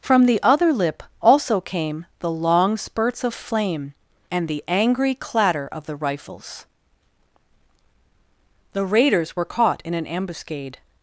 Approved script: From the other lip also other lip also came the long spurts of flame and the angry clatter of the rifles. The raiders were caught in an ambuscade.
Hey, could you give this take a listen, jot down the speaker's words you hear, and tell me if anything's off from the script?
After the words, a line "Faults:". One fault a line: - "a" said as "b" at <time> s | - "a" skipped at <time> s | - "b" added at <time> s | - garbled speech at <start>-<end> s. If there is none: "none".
From the other lip also came the long spurts of flame and the angry clatter of the rifles. The raiders were caught in an ambuscade.
Faults:
- "other lip also" skipped at 1.6 s